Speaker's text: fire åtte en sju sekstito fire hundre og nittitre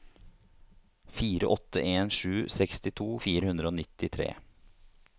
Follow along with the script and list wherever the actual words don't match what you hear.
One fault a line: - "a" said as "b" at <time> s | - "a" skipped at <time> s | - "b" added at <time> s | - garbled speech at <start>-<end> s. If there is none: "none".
none